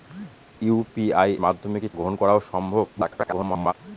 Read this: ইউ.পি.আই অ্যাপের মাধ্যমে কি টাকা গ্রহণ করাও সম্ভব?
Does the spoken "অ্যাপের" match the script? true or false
false